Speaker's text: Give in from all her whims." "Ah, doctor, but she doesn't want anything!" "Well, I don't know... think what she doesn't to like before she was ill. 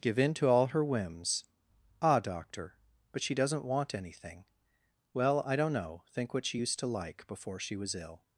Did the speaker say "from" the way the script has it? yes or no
no